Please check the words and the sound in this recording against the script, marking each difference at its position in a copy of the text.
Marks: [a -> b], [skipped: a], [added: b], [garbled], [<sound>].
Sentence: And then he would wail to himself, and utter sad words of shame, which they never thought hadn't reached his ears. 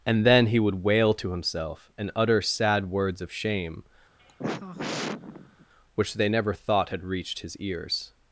And then he would wail to himself, and utter sad words of shame, [sigh] which they never thought [hadn't -> had] reached his ears.